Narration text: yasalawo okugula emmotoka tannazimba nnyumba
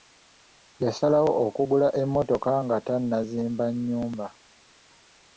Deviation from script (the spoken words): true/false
true